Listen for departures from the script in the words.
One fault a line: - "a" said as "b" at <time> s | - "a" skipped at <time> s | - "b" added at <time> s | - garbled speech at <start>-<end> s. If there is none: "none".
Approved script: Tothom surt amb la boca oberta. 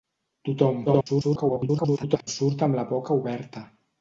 - garbled speech at 0.9-2.3 s